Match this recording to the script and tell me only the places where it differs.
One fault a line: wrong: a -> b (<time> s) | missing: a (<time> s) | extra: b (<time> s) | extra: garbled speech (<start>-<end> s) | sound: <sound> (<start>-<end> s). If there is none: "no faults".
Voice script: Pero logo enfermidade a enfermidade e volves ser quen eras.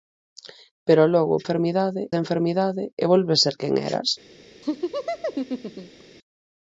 sound: laugh (4.6-6.0 s)